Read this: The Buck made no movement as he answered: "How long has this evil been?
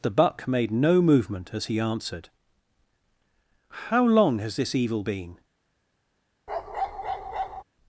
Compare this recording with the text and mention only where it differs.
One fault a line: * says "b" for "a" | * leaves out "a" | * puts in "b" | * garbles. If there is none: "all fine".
all fine